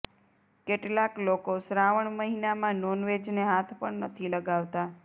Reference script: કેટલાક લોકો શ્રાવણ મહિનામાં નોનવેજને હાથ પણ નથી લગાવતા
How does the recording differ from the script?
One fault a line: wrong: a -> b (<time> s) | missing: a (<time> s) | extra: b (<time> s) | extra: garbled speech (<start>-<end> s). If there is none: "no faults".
no faults